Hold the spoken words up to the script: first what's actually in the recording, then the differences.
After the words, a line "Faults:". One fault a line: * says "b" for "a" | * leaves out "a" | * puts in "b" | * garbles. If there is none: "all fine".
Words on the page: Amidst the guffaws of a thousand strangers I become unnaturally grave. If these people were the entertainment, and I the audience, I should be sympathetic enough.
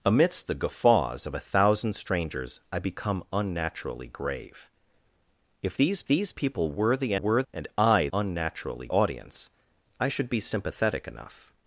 Amidst the guffaws of a thousand strangers I become unnaturally grave. If these these people were the were, and I unnaturally audience, I should be sympathetic enough.
Faults:
* puts in "these"
* says "were" for "entertainment"
* says "unnaturally" for "the"